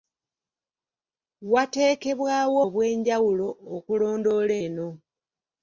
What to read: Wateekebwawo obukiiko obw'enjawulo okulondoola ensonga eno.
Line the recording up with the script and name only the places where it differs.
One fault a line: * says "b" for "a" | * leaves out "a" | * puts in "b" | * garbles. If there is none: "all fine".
* leaves out "obukiiko"
* leaves out "ensonga"